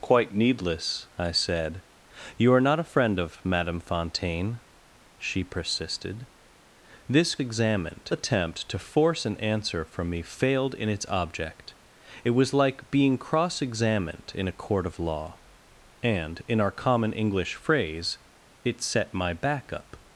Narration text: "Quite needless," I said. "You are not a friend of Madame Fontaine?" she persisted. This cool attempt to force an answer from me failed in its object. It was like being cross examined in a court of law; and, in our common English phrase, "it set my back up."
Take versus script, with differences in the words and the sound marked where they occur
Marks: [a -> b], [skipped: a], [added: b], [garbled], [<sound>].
"Quite needless," I said. "You are not a friend of Madame Fontaine?" she persisted. This [cool -> examined] attempt to force an answer from me failed in its object. It was like being cross examined in a court of law; and, in our common English phrase, "it set my back up."